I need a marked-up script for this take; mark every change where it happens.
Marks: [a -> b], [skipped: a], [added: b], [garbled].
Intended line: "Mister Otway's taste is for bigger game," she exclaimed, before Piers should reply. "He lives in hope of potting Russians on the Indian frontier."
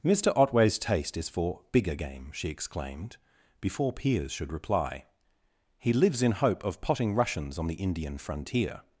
"Mister Otway's taste is for bigger game," she exclaimed, before Piers should reply. "He lives in hope of potting Russians on the Indian frontier."